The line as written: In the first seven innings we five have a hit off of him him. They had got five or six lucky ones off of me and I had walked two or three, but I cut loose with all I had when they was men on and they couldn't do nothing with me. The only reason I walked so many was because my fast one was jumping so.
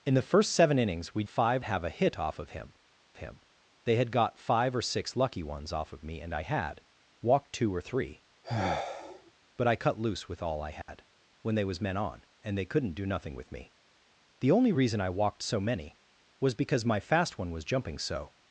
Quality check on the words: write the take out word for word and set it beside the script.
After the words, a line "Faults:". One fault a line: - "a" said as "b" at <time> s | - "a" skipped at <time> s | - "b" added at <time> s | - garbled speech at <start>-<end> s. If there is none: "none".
In the first seven innings we five have a hit off of him him. They had got five or six lucky ones off of me and I had walked two or three, but I cut loose with all I had when they was men on and they couldn't do nothing with me. The only reason I walked so many was because my fast one was jumping so.
Faults:
none